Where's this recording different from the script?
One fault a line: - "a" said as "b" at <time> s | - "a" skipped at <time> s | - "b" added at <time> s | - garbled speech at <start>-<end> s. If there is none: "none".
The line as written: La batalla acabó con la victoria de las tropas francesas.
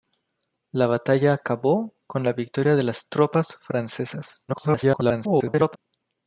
- garbled speech at 4.5-5.8 s